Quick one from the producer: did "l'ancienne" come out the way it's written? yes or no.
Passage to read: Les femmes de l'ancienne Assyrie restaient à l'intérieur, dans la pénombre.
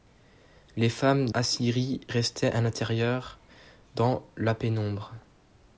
no